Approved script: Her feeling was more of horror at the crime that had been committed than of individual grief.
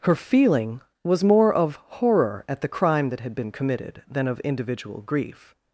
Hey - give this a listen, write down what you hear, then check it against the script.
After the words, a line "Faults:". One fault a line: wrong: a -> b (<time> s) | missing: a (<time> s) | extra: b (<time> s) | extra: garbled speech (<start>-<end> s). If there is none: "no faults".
Her feeling was more of horror at the crime that had been committed than of individual grief.
Faults:
no faults